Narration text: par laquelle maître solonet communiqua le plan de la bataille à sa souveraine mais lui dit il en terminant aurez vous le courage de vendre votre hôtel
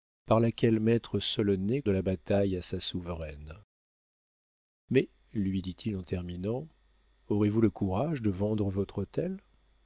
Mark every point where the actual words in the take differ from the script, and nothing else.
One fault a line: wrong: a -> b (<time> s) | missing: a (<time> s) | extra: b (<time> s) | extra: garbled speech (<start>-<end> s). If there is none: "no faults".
missing: communiqua le plan (1.8 s)